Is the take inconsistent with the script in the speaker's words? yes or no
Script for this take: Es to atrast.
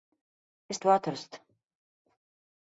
no